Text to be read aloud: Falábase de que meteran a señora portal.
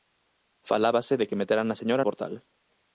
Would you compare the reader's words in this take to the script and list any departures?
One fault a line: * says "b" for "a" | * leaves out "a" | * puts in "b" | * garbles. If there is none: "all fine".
all fine